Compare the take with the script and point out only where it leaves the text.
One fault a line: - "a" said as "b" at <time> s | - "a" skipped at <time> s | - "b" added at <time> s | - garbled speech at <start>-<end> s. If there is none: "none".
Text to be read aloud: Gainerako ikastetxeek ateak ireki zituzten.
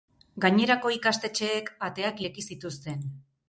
none